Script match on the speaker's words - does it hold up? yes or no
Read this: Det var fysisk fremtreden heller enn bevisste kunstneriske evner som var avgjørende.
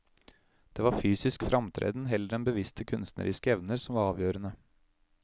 yes